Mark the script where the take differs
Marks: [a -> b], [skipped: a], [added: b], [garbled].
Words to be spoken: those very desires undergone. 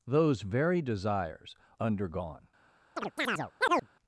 those very desires undergone.